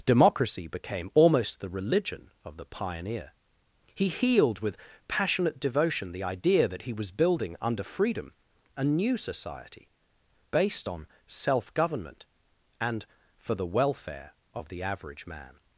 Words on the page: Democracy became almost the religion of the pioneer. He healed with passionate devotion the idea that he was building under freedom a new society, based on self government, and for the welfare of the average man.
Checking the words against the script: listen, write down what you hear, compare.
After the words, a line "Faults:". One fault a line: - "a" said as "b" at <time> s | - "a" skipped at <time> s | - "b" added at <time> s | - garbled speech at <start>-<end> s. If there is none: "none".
Democracy became almost the religion of the pioneer. He healed with passionate devotion the idea that he was building under freedom a new society, based on self government, and for the welfare of the average man.
Faults:
none